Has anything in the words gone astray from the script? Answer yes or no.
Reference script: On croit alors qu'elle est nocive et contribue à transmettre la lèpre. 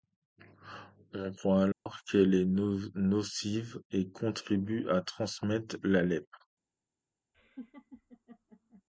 no